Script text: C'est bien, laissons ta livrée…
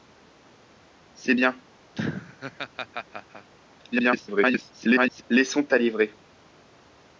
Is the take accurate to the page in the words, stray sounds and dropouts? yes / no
no